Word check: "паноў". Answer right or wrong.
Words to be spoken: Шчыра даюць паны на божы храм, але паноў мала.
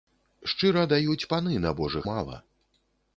wrong